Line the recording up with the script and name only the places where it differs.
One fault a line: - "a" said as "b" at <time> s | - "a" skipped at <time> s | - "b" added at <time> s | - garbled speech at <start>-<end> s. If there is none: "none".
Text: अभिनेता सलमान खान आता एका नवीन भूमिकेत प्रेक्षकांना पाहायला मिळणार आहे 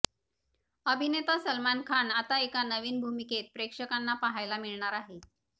none